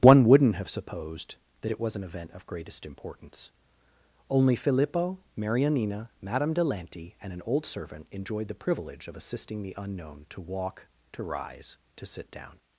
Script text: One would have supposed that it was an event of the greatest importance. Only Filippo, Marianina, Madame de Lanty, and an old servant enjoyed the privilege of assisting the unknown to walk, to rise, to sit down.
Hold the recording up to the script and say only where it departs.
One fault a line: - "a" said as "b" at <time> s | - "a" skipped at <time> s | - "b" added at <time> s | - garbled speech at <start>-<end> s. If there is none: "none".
- "would" said as "wouldn't" at 0.2 s
- "the" skipped at 2.5 s